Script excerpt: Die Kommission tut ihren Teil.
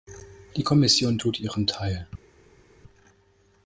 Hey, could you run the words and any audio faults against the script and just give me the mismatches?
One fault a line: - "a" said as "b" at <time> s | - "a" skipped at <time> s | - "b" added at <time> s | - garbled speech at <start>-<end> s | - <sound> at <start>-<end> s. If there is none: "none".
none